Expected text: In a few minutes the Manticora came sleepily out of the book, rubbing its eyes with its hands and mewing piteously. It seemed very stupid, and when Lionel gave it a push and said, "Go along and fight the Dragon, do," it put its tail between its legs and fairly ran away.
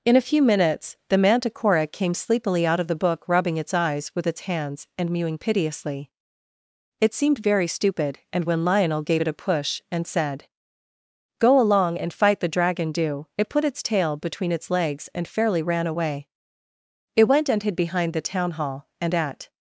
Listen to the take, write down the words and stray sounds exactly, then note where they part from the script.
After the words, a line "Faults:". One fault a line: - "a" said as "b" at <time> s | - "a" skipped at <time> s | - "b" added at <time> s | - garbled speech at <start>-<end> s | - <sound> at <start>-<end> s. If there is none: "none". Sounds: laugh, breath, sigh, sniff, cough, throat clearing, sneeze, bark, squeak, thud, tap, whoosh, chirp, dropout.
In a few minutes the Manticora came sleepily out of the book, rubbing its eyes with its hands and mewing piteously. It seemed very stupid, and when Lionel gave it a push and said, "Go along and fight the Dragon, do," it put its tail between its legs and fairly ran away. It went and hid behind the Town Hall, and at
Faults:
- "It went and hid behind the Town Hall and at" added at 17.2 s